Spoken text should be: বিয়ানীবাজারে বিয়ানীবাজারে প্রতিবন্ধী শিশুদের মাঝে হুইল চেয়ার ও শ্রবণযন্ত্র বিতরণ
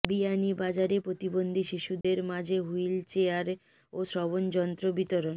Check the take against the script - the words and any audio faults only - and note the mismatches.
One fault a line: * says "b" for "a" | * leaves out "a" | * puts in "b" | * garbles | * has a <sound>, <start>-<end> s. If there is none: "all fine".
* leaves out "বিয়ানীবাজারে"
* has a dropout, 2.0-2.0 s